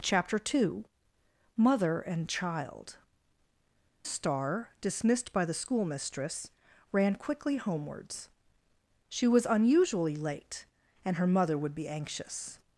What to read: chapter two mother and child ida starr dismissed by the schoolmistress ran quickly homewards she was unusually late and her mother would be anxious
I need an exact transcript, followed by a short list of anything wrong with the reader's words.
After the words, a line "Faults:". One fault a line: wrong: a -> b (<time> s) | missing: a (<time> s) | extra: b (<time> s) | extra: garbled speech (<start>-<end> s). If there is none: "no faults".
chapter two mother and child starr dismissed by the schoolmistress ran quickly homewards she was unusually late and her mother would be anxious
Faults:
missing: ida (3.0 s)